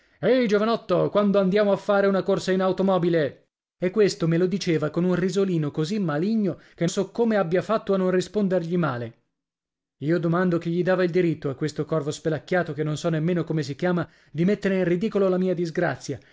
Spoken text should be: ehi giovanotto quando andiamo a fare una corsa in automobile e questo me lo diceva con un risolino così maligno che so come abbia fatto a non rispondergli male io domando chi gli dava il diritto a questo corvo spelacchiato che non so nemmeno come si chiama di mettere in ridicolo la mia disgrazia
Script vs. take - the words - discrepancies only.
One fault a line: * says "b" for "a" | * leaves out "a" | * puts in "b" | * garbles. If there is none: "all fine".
all fine